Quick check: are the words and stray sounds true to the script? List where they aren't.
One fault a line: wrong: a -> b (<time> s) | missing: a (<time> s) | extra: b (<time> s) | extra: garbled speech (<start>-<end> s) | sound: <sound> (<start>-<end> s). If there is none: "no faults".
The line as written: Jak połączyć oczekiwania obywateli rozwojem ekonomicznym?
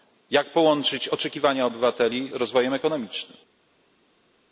no faults